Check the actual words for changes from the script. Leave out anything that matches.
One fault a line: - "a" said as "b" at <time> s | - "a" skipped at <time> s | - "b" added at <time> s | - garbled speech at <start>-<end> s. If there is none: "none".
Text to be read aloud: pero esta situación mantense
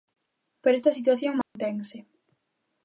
none